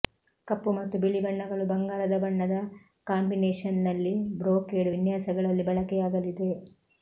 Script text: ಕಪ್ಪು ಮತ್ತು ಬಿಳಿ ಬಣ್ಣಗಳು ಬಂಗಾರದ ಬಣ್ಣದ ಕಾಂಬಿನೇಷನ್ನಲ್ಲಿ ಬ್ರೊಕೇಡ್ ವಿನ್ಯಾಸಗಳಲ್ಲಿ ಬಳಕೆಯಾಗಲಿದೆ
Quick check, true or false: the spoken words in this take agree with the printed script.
true